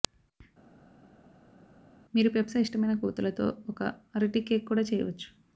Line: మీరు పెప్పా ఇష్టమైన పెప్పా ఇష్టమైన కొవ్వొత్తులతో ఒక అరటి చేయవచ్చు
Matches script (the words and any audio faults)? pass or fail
fail